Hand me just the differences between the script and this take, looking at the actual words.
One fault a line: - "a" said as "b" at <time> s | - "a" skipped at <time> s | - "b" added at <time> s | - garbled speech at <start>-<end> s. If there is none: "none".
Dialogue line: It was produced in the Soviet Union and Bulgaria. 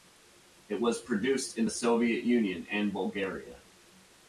none